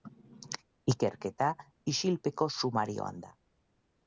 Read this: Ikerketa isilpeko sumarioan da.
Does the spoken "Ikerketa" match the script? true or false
true